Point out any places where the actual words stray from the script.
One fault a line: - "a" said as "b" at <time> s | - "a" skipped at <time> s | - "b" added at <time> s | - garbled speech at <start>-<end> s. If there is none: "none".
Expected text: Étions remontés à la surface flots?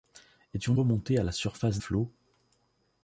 none